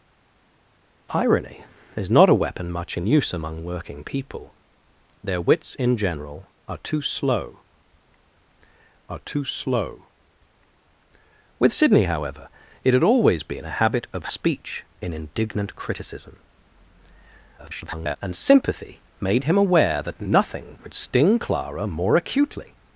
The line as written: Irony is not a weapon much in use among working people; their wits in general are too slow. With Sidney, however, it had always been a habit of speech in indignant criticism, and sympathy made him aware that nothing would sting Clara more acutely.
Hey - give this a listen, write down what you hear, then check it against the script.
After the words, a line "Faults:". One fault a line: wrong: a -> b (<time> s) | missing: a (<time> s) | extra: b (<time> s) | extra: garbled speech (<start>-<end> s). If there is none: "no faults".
Irony is not a weapon much in use among working people; their wits in general are too slow are too slow. With Sidney, however, it had always been a habit of speech in indignant criticism, [garbled] and sympathy made him aware that nothing would sting Clara more acutely.
Faults:
extra: are too slow (9.1 s)
extra: garbled speech (17.6-18.2 s)